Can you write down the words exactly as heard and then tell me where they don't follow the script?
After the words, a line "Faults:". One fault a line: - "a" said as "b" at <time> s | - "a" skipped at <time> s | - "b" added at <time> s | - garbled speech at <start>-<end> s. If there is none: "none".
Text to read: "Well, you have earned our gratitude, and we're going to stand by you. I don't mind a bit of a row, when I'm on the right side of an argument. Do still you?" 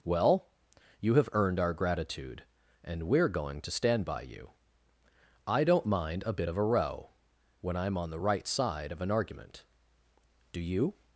"Well, you have earned our gratitude, and we're going to stand by you. I don't mind a bit of a row, when I'm on the right side of an argument. Do you?"
Faults:
- "still" skipped at 10.6 s